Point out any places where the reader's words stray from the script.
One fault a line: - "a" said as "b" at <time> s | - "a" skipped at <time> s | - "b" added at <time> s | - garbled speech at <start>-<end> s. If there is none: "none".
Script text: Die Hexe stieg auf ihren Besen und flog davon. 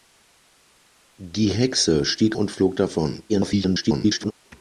- "auf ihren Besen" skipped at 2.4 s
- garbled speech at 3.3-4.3 s